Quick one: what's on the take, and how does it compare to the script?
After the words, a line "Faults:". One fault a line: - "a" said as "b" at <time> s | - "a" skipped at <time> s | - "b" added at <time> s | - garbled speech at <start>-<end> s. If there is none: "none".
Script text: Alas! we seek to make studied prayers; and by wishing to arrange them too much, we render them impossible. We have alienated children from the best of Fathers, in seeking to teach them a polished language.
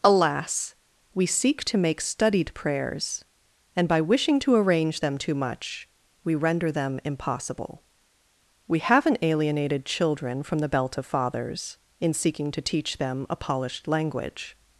Alas! we seek to make studied prayers; and by wishing to arrange them too much, we render them impossible. We haven't alienated children from the belt of Fathers, in seeking to teach them a polished language.
Faults:
- "have" said as "haven't" at 8.8 s
- "best" said as "belt" at 10.7 s